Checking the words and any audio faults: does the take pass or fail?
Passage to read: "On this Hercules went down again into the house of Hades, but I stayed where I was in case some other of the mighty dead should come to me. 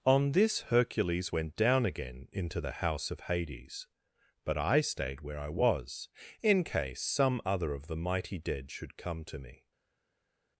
pass